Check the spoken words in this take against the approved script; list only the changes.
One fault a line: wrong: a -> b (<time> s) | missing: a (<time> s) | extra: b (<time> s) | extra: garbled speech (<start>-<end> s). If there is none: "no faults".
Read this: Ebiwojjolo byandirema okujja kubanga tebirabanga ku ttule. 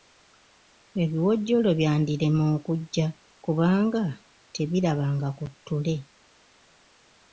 no faults